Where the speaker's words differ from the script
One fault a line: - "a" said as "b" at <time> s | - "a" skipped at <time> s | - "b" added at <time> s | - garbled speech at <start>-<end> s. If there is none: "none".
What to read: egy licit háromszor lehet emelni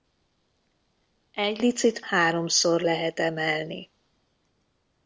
none